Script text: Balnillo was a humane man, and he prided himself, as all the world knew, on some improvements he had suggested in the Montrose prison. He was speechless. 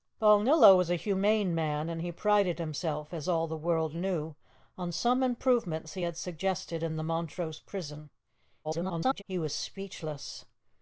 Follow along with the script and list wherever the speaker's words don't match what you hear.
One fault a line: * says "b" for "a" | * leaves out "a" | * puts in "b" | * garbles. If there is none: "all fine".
* garbles